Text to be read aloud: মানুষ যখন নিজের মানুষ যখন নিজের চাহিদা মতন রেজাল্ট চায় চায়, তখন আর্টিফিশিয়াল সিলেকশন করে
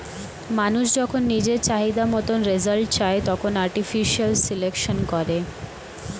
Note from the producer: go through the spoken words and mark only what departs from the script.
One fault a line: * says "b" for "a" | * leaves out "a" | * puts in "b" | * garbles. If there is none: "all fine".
* leaves out "মানুষ যখন নিজের"
* leaves out "চায়"